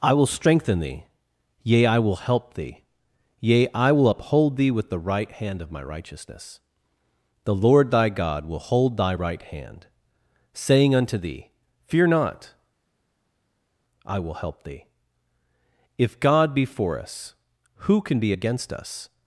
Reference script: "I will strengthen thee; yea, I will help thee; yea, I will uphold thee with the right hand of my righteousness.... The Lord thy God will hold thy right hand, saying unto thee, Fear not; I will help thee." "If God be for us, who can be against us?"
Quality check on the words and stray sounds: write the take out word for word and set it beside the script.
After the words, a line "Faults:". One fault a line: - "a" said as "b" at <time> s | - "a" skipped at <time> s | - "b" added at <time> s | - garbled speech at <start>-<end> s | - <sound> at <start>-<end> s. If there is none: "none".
"I will strengthen thee; yea, I will help thee; yea, I will uphold thee with the right hand of my righteousness.... The Lord thy God will hold thy right hand, saying unto thee, Fear not; I will help thee." "If God be for us, who can be against us?"
Faults:
none